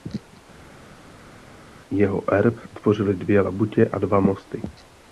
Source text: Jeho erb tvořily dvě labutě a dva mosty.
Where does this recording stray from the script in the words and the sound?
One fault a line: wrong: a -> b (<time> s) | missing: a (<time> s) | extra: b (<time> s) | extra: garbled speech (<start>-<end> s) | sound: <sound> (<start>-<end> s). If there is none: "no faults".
no faults